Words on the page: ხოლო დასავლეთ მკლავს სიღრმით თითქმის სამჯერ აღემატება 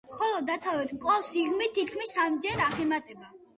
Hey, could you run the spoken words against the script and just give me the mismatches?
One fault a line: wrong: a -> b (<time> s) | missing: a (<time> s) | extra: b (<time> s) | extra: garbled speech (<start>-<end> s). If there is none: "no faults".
no faults